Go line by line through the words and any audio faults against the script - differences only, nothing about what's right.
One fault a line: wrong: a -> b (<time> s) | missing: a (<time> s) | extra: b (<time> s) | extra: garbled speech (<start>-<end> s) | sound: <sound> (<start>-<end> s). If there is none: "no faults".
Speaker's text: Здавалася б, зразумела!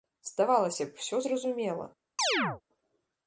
extra: усё (1.0 s)
sound: chirp (2.2-2.6 s)